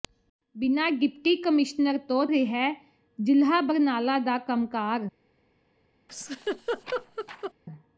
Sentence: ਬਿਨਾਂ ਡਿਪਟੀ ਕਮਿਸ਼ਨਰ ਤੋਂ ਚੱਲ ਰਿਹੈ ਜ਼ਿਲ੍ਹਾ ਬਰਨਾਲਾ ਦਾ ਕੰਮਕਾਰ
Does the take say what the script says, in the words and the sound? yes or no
no